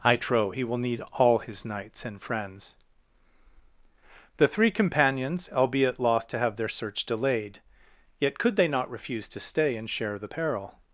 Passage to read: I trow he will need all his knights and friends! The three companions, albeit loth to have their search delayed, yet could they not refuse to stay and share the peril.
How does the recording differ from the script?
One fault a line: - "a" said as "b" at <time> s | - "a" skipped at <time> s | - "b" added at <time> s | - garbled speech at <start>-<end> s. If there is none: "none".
none